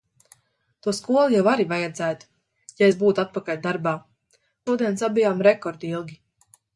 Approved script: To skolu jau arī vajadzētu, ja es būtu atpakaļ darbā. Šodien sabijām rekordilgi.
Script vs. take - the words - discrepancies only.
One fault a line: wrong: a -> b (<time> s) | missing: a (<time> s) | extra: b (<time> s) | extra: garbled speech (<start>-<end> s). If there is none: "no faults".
no faults